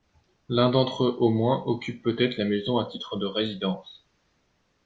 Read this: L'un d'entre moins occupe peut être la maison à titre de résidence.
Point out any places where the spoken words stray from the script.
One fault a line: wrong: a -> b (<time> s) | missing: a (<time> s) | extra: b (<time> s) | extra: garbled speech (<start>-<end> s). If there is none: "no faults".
extra: eux au (1.0 s)